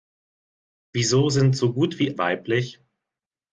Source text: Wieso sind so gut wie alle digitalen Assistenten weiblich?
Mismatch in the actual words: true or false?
true